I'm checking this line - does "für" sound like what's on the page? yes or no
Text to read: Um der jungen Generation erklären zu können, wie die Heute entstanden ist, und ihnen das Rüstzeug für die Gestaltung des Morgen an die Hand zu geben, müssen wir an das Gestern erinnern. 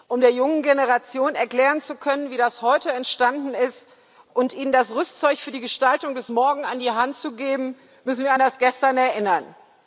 yes